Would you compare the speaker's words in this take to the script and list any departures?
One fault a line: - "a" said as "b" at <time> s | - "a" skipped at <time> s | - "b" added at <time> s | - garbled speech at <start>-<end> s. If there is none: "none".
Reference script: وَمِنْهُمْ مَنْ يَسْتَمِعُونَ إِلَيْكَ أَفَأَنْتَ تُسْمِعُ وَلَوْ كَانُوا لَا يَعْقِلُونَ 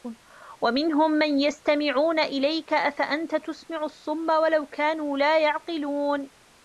- "الصُّمَّ" added at 3.8 s